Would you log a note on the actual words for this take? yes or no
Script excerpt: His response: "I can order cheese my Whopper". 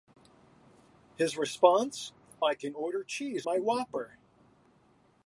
no